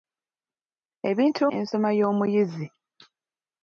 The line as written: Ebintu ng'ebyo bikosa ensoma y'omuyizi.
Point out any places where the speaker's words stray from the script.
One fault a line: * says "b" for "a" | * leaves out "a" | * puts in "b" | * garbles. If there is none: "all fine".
* leaves out "ng'ebyo bikosa"